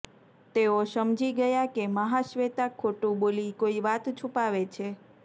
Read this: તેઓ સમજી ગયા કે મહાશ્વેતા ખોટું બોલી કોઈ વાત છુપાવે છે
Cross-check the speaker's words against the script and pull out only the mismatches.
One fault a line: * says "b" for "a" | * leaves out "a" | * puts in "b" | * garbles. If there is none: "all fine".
all fine